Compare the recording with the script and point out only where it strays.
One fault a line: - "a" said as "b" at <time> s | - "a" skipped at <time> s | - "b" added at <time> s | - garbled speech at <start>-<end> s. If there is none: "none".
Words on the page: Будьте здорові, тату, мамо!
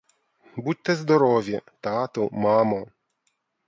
none